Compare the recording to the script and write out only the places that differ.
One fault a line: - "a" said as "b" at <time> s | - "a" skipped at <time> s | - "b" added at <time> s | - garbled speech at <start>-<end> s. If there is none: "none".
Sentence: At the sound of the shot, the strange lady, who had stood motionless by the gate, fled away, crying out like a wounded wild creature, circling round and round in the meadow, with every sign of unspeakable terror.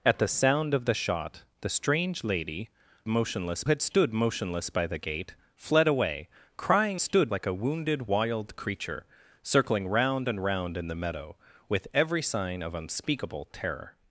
- "who" said as "motionless" at 3.1 s
- "out" said as "stood" at 7.0 s